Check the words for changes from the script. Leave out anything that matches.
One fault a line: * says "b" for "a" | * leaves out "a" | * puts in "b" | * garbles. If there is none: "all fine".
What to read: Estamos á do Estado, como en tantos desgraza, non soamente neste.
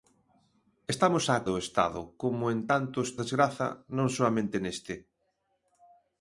all fine